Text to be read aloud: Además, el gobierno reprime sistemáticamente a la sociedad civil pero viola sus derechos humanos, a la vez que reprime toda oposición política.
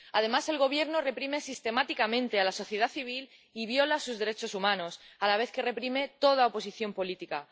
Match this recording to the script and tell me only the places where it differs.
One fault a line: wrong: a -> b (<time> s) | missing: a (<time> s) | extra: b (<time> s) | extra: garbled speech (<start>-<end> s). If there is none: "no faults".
wrong: pero -> y (3.5 s)